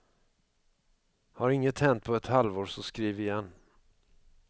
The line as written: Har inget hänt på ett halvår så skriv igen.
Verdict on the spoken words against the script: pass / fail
pass